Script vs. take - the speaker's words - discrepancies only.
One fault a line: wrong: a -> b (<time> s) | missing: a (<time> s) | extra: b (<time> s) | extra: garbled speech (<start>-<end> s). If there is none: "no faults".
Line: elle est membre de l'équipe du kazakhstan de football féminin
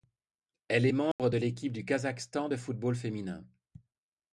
no faults